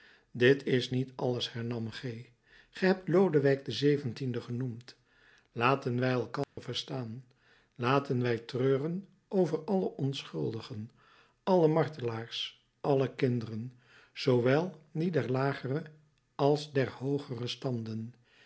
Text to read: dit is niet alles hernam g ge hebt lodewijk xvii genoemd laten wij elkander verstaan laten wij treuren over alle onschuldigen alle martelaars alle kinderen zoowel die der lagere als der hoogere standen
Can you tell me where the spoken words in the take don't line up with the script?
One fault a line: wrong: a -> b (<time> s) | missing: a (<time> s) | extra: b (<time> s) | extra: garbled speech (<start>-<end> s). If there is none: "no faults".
no faults